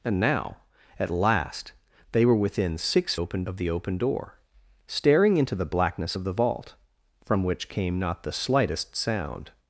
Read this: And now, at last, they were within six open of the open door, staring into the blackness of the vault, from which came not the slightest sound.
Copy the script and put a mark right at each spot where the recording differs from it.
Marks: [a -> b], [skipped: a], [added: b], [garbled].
And now, at last, they were within six open of the open door, staring into the blackness of the vault, from which came not the slightest sound.